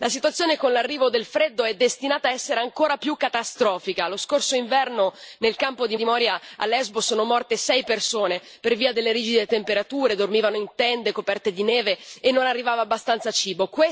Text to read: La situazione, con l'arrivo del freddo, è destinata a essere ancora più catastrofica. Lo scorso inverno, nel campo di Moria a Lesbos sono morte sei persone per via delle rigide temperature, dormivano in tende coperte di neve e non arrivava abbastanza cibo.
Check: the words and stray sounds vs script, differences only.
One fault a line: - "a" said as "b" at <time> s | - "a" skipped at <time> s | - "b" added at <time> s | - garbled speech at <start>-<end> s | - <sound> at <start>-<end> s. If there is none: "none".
- "di" added at 5.9 s